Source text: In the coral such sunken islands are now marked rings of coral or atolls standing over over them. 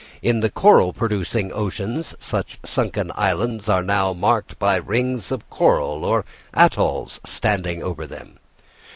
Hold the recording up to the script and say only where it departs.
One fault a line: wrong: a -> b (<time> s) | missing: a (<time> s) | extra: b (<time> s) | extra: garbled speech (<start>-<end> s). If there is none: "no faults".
extra: producing oceans (0.9 s)
extra: by (4.6 s)
missing: over (8.1 s)